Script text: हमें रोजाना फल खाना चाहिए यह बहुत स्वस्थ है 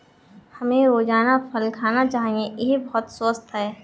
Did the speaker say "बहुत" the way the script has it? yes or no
yes